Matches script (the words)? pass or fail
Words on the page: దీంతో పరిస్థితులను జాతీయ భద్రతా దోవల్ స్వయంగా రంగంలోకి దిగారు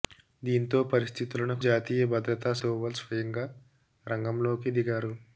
pass